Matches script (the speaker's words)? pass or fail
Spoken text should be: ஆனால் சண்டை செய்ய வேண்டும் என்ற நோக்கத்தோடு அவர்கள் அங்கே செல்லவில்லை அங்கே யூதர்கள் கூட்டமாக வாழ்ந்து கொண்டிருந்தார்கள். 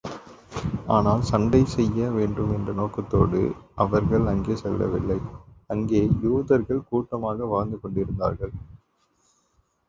pass